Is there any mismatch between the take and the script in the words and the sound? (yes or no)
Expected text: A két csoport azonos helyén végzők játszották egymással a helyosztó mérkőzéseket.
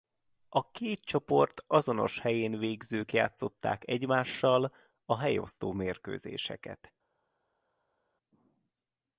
no